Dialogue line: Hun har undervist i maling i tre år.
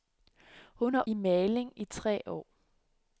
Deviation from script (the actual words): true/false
true